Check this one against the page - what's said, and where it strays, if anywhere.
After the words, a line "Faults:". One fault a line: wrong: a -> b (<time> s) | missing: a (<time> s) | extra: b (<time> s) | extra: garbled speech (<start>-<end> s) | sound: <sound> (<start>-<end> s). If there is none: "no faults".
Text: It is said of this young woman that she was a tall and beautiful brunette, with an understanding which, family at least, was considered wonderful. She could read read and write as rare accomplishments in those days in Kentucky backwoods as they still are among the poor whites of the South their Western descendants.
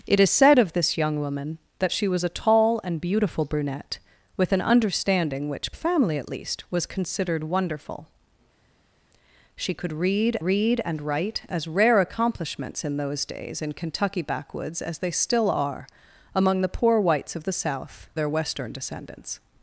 It is said of this young woman that she was a tall and beautiful brunette, with an understanding which, family at least, was considered wonderful. She could read read and write as rare accomplishments in those days in Kentucky backwoods as they still are among the poor whites of the South their Western descendants.
Faults:
no faults